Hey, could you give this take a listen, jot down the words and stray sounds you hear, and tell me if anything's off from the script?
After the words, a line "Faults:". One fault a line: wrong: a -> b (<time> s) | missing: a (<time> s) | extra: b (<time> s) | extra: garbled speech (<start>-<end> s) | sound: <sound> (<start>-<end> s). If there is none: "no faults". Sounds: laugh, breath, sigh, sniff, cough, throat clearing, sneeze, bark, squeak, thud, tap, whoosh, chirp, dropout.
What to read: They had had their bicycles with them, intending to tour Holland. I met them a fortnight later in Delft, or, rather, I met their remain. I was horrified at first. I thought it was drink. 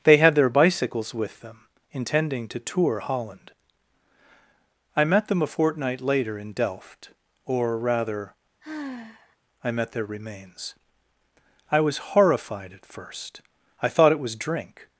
They had their bicycles with them, intending to tour Holland. I met them a fortnight later in Delft, or, rather, I met their remains. I was horrified at first. I thought it was drink.
Faults:
missing: had (0.3 s)
sound: sigh (8.6-9.4 s)
wrong: remain -> remains (10.1 s)